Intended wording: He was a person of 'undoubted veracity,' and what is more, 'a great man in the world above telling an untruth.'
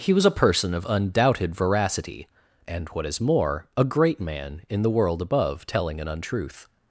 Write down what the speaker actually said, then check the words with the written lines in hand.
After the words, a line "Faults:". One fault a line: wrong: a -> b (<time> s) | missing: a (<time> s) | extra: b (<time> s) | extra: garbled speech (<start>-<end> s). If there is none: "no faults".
He was a person of 'undoubted veracity,' and what is more, 'a great man in the world above telling an untruth.'
Faults:
no faults